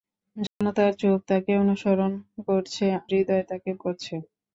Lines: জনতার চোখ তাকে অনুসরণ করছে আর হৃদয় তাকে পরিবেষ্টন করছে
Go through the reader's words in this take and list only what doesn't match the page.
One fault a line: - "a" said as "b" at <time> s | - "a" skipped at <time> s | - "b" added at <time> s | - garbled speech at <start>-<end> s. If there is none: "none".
- "আর" skipped at 2.9 s
- "পরিবেষ্টন" skipped at 3.7 s